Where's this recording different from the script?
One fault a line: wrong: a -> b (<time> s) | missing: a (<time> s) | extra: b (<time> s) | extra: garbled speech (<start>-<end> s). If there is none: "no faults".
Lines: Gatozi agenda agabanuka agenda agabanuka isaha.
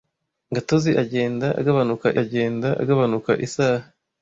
no faults